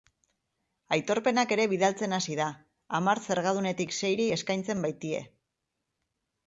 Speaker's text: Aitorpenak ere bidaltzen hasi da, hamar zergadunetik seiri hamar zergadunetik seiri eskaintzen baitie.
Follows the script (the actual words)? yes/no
no